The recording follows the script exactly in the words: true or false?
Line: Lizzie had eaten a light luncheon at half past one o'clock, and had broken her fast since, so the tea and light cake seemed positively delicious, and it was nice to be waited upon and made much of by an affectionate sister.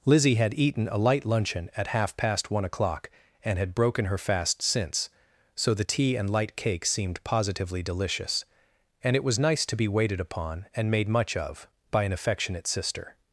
true